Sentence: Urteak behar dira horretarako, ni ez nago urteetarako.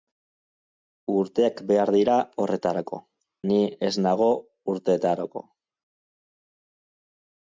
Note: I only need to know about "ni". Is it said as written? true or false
true